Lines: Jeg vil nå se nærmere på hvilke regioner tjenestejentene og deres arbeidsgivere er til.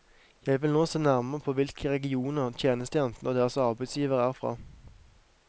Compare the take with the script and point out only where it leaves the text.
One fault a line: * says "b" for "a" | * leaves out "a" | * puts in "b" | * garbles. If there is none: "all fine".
* says "fra" for "til"